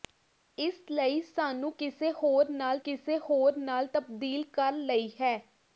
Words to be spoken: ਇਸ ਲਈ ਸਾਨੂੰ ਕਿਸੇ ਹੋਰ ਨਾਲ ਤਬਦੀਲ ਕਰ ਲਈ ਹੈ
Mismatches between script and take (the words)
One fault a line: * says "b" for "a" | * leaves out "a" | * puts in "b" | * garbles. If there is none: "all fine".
* puts in "ਕਿਸੇ ਹੋਰ ਨਾਲ"